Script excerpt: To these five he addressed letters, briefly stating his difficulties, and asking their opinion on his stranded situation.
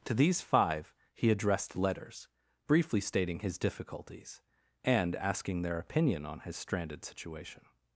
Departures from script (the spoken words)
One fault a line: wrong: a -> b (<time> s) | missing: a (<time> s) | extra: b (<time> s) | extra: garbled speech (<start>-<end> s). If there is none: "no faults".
no faults